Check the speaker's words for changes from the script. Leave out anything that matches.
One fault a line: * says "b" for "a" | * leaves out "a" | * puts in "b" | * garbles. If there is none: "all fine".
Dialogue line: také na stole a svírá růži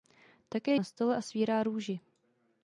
all fine